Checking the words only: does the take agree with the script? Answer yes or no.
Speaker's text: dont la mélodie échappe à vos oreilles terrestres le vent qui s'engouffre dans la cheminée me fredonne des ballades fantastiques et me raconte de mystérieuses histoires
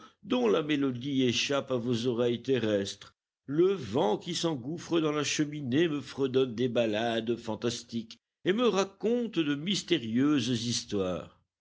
yes